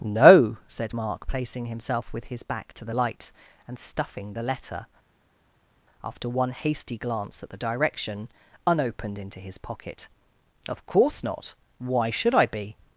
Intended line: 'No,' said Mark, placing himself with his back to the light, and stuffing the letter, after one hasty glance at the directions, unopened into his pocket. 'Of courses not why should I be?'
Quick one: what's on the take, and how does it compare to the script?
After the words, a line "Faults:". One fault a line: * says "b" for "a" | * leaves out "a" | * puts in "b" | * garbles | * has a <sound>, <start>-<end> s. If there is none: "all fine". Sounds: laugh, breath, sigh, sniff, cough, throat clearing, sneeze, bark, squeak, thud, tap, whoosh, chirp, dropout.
'No,' said Mark, placing himself with his back to the light, and stuffing the letter, after one hasty glance at the direction, unopened into his pocket. 'Of course not why should I be?'
Faults:
* says "direction" for "directions"
* says "course" for "courses"